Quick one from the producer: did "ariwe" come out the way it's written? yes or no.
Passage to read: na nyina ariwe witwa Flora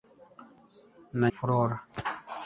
no